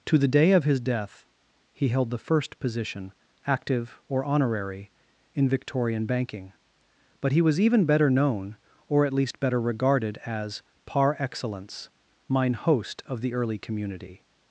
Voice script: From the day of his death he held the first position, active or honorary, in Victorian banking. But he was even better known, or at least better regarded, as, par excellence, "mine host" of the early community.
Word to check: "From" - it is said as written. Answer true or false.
false